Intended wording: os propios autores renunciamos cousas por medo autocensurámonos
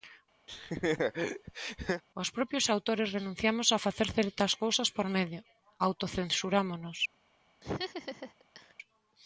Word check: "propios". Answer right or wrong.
right